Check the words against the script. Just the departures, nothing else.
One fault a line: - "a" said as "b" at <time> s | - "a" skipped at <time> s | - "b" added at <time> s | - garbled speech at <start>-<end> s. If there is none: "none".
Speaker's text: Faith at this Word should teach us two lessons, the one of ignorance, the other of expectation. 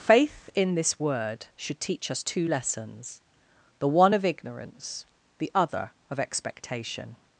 - "at" said as "in" at 0.6 s